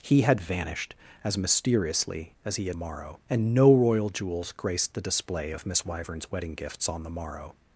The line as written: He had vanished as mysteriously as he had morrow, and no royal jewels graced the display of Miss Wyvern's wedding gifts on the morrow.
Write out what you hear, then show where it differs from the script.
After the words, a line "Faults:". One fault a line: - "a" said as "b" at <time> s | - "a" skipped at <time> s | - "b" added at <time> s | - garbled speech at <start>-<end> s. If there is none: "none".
He had vanished as mysteriously as he had morrow, and no royal jewels graced the display of Miss Wyvern's wedding gifts on the morrow.
Faults:
none